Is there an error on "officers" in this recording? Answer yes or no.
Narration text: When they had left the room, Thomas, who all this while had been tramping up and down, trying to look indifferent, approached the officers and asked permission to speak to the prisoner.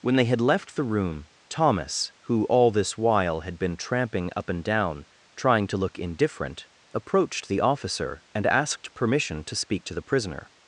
yes